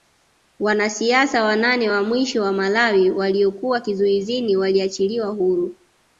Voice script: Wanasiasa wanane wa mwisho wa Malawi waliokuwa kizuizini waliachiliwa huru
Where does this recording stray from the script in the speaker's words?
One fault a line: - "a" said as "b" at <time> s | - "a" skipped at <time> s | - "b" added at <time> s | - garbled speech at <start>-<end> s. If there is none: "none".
none